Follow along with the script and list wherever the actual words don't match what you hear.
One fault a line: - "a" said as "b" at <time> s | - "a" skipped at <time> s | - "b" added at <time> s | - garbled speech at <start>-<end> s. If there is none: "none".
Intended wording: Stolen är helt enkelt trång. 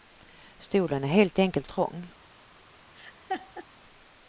none